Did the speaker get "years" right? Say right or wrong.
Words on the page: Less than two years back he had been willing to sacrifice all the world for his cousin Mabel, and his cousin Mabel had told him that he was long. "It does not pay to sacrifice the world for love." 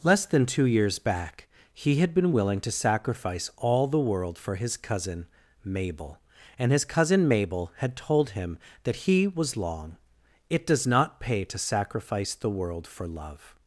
right